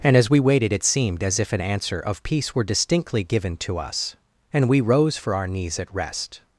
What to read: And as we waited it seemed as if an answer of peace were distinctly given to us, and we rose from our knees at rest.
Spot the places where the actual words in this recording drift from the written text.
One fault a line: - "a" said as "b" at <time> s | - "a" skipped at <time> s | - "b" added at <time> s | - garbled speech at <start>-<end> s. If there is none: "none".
- "from" said as "for" at 5.2 s